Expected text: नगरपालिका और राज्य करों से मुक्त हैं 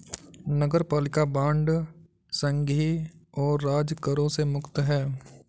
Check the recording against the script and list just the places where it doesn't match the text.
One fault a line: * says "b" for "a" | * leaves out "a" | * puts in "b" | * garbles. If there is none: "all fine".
* puts in "बांड संघीय"